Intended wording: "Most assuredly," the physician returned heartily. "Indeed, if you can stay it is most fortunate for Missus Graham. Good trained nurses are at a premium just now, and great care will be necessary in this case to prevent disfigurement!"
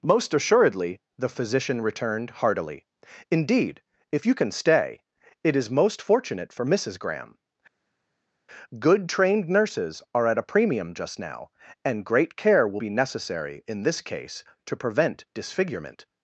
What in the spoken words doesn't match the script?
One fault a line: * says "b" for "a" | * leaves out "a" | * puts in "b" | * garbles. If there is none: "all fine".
all fine